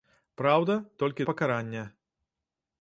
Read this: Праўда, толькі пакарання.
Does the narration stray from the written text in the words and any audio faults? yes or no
no